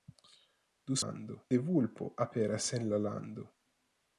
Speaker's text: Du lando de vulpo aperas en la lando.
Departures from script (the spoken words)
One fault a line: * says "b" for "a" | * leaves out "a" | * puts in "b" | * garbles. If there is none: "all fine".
all fine